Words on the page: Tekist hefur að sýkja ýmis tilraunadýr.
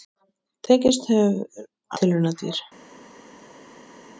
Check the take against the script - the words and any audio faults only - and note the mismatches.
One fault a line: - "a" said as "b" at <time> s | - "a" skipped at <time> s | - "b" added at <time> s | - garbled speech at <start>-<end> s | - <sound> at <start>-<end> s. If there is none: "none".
- "að sýkja ýmis" skipped at 1.7 s